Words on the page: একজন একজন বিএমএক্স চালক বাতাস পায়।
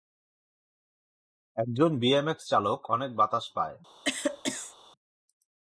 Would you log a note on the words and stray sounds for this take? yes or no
yes